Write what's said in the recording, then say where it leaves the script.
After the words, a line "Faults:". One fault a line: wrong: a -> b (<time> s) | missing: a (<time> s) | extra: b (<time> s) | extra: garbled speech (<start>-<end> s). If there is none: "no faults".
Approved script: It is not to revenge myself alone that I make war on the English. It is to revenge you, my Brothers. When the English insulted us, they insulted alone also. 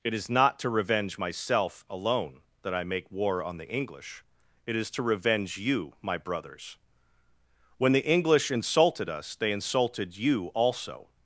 It is not to revenge myself alone that I make war on the English. It is to revenge you, my Brothers. When the English insulted us, they insulted you also.
Faults:
wrong: alone -> you (10.2 s)